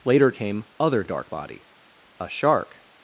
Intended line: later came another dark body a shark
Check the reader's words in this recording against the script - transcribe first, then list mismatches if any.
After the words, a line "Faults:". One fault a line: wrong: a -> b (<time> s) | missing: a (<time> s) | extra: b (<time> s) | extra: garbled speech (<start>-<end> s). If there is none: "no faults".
later came other dark body a shark
Faults:
wrong: another -> other (0.8 s)